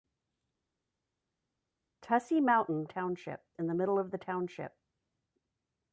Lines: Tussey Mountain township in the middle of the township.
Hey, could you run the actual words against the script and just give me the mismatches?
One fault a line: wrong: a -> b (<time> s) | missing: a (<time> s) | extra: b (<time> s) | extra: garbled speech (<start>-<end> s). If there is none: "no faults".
no faults